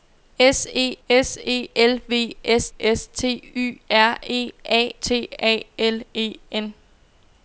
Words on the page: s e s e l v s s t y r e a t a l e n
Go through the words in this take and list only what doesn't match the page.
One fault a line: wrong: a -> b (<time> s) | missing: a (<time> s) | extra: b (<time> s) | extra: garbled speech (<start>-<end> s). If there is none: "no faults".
no faults